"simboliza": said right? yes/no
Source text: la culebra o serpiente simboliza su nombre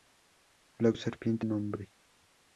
no